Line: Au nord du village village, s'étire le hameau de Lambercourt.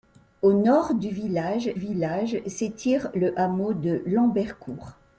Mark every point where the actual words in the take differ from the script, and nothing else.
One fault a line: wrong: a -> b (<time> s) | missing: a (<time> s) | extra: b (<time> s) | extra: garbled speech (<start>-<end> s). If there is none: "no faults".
no faults